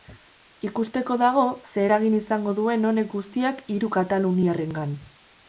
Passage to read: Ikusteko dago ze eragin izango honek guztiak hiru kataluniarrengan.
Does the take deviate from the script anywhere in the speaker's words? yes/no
yes